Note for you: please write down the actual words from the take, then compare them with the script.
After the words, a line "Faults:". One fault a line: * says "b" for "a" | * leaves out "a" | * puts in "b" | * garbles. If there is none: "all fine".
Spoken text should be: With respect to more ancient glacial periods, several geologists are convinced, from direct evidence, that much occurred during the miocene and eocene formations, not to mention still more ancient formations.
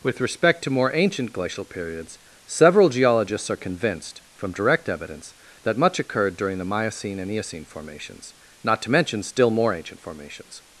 With respect to more ancient glacial periods, several geologists are convinced, from direct evidence, that much occurred during the miocene and eocene formations, not to mention still more ancient formations.
Faults:
all fine